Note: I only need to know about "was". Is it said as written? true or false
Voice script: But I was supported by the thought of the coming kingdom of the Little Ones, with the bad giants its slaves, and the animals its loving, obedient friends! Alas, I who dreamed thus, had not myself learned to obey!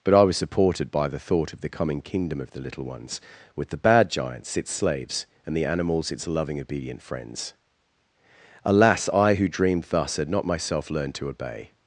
true